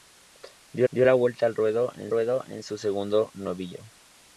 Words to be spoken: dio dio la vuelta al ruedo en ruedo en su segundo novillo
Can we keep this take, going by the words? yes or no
yes